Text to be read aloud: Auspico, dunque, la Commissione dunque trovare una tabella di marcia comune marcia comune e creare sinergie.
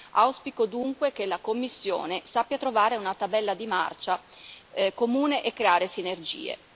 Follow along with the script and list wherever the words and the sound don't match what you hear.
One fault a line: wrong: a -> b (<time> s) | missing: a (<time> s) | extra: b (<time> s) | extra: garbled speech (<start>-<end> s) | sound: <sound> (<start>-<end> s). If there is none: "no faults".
extra: che (1.1 s)
wrong: dunque -> sappia (2.2 s)
missing: marcia comune (5.4 s)